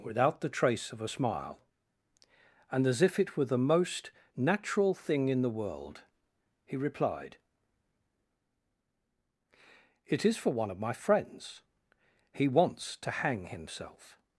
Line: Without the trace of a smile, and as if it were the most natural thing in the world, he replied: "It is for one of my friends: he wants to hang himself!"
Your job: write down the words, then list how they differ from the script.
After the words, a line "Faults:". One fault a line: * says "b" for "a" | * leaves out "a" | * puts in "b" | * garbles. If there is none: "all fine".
Without the trace of a smile, and as if it were the most natural thing in the world, he replied: "It is for one of my friends: he wants to hang himself!"
Faults:
all fine